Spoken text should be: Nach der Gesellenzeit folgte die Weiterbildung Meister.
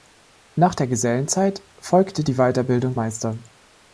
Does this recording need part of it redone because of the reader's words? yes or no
no